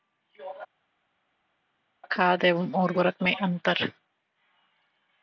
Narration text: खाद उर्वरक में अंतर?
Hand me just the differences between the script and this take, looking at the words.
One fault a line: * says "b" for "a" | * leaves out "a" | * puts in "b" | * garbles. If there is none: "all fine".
* puts in "एवं"